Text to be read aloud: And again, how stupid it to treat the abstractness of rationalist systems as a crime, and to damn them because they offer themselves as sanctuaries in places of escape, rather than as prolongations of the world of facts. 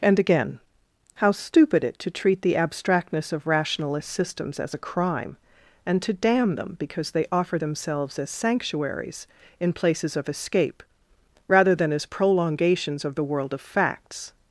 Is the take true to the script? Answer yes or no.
yes